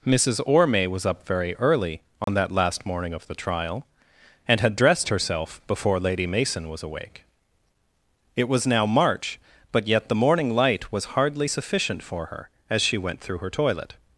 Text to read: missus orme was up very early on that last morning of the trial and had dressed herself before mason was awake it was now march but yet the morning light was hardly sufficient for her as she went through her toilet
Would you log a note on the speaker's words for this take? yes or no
yes